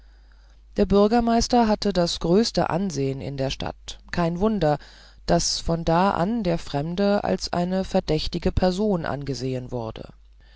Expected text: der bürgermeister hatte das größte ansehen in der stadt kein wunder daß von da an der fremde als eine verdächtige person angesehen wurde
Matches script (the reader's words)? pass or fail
pass